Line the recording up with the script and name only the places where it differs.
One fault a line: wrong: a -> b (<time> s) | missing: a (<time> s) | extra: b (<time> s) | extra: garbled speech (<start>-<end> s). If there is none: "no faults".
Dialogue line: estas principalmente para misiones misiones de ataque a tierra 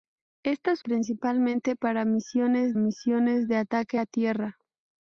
no faults